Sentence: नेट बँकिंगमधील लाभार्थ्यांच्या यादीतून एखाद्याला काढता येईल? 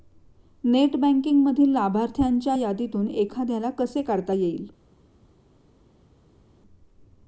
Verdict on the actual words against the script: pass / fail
fail